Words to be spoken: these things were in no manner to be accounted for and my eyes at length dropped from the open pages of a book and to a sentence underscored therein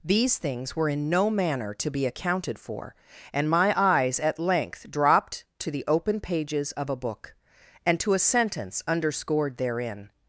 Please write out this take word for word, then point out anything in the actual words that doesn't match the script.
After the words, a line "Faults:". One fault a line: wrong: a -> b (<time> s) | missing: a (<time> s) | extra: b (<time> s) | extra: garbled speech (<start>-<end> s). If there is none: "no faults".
these things were in no manner to be accounted for and my eyes at length dropped to the open pages of a book and to a sentence underscored therein
Faults:
wrong: from -> to (5.6 s)